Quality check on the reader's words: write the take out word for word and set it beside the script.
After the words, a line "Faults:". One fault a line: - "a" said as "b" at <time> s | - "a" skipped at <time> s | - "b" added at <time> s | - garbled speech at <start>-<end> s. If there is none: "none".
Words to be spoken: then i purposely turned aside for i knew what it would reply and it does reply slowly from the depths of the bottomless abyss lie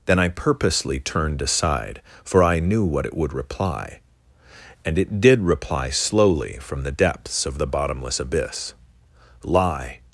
then i purposely turned aside for i knew what it would reply and it did reply slowly from the depths of the bottomless abyss lie
Faults:
- "does" said as "did" at 5.2 s